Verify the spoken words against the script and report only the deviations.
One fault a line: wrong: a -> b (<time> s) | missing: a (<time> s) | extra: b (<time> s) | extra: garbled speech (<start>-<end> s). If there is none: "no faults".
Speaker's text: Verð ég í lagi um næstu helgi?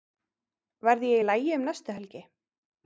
no faults